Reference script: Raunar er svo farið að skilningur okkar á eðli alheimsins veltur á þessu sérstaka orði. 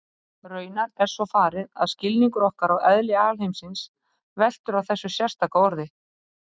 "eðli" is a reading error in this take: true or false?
false